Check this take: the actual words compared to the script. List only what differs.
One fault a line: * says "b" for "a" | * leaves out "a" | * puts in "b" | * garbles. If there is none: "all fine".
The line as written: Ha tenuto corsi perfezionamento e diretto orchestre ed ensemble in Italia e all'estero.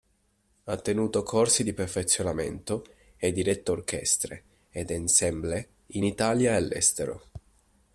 * puts in "di"